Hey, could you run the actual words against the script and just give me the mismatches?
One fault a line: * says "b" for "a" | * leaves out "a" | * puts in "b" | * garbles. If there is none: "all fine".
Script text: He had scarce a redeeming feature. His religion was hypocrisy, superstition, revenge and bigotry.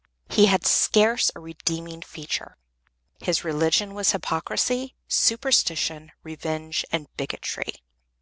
all fine